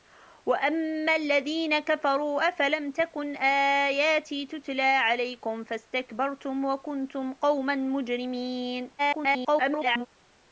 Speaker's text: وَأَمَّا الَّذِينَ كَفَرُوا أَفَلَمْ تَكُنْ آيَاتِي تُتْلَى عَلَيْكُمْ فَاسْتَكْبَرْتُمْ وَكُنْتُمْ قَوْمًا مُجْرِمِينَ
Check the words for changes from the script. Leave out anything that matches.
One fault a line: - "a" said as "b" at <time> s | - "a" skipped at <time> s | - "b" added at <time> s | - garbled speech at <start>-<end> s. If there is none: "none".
- garbled speech at 9.0-10.1 s